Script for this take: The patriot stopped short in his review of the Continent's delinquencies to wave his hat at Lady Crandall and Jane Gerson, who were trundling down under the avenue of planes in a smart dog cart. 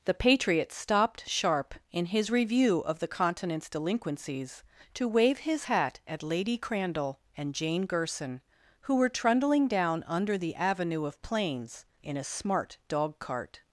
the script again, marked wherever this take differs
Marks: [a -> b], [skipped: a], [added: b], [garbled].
The patriot stopped [short -> sharp] in his review of the Continent's delinquencies to wave his hat at Lady Crandall and Jane Gerson, who were trundling down under the avenue of planes in a smart dog cart.